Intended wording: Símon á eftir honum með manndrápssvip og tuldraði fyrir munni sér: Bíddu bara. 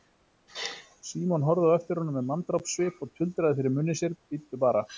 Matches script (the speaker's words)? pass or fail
fail